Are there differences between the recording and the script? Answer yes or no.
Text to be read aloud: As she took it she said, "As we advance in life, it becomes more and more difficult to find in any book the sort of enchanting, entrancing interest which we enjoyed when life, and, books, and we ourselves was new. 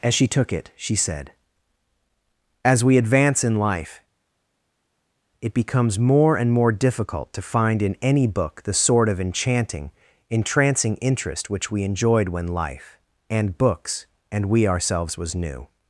no